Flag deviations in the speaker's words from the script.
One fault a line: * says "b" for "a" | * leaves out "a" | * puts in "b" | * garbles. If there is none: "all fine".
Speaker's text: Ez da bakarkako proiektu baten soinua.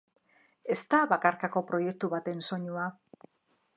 all fine